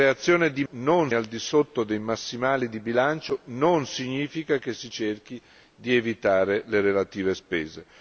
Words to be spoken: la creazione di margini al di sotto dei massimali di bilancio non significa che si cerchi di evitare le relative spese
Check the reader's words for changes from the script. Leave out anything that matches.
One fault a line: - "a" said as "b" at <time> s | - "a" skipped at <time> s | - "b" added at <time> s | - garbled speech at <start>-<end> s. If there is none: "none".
- "margini" said as "non" at 0.7 s